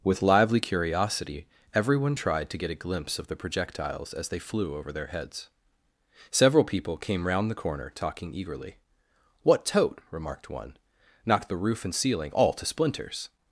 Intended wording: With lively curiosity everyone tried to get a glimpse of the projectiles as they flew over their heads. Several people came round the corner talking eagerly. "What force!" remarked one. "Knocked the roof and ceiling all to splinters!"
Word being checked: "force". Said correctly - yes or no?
no